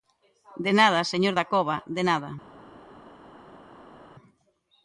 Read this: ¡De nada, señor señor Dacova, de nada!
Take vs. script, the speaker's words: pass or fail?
fail